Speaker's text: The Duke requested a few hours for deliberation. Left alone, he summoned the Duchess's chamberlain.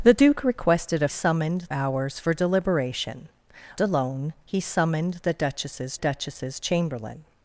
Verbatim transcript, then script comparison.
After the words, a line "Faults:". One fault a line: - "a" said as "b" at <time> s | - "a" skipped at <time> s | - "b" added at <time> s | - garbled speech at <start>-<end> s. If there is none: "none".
The Duke requested a summoned hours for deliberation. Alone, he summoned the Duchess's Duchess's chamberlain.
Faults:
- "few" said as "summoned" at 1.1 s
- "Left" skipped at 3.3 s
- "Duchess's" added at 6.0 s